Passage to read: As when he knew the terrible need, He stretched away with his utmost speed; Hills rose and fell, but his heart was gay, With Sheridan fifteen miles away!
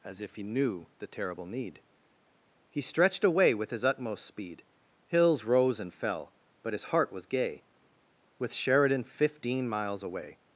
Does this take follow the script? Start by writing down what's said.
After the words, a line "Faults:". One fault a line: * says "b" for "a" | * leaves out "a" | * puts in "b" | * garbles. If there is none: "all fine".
As if he knew the terrible need, He stretched away with his utmost speed; Hills rose and fell, but his heart was gay, With Sheridan fifteen miles away!
Faults:
* says "if" for "when"